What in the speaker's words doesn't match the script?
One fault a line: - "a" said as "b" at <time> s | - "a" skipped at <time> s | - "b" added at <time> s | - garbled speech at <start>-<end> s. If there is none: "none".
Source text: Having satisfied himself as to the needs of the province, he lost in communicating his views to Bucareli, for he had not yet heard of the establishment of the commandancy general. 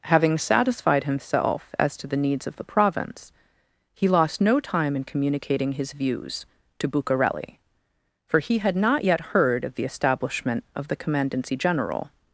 - "no time" added at 4.4 s